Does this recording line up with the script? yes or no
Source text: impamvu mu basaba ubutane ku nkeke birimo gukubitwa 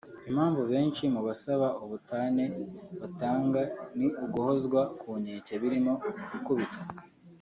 no